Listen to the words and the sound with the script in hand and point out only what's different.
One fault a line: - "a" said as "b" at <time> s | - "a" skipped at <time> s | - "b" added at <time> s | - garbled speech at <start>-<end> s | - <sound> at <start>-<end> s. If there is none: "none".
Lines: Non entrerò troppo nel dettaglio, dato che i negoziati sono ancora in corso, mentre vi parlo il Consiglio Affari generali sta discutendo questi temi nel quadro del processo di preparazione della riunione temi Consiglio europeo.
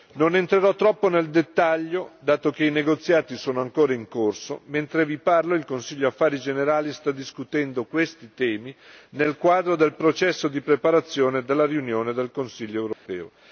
- "temi" said as "del" at 12.1 s
- dropout at 12.9-13.1 s